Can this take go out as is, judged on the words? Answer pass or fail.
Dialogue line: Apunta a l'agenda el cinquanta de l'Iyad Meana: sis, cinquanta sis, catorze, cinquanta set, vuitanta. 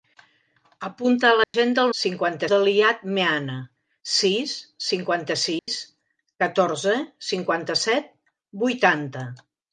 pass